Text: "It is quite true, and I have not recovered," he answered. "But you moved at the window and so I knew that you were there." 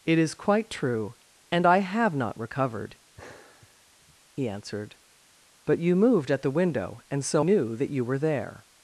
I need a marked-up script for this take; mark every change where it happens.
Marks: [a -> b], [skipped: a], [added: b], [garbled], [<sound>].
"It is quite true, and I have not recovered," [sigh] he answered. "But you moved at the window and so [skipped: I] knew that you were there."